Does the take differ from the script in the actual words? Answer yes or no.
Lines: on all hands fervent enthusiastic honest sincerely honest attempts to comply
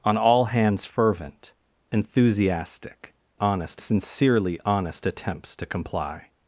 no